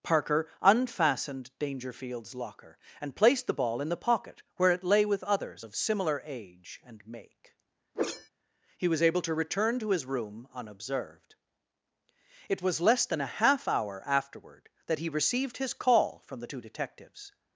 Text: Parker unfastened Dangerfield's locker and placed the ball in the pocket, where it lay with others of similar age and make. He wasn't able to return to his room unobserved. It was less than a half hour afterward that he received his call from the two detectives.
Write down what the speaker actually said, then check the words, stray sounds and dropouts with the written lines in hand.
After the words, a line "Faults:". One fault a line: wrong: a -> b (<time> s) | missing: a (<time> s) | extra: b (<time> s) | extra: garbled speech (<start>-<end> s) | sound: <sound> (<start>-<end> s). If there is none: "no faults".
Parker unfastened Dangerfield's locker and placed the ball in the pocket, where it lay with others of similar age and make. He was able to return to his room unobserved. It was less than a half hour afterward that he received his call from the two detectives.
Faults:
sound: whoosh (7.9-8.3 s)
wrong: wasn't -> was (8.9 s)